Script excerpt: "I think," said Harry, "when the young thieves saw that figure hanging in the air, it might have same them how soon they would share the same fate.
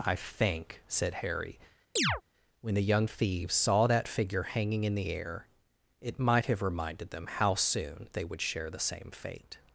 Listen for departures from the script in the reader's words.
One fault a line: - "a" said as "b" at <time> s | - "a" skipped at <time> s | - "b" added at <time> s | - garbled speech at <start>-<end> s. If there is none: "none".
- "same" said as "reminded" at 6.6 s